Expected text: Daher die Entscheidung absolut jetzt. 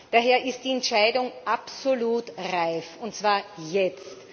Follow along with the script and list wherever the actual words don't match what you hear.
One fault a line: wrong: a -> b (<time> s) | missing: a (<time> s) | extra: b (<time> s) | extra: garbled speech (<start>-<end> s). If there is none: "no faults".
extra: ist (0.4 s)
extra: reif und zwar (2.5 s)